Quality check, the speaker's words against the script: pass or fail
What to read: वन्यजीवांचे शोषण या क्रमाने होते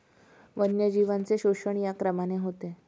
pass